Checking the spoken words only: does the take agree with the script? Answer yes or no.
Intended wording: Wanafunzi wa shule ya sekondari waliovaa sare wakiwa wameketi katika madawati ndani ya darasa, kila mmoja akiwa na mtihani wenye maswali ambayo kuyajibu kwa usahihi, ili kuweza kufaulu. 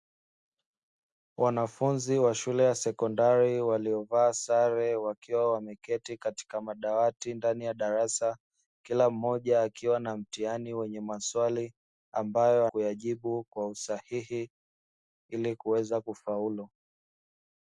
yes